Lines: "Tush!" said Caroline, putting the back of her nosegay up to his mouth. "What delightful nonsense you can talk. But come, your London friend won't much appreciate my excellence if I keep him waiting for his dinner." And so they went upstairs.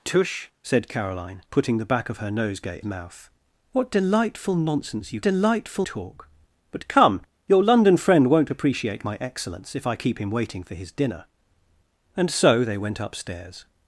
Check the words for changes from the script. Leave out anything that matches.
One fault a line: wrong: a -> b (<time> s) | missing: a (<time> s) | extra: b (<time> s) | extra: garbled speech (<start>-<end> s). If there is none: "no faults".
missing: up to his (2.8 s)
wrong: can -> delightful (5.2 s)
missing: much (8.5 s)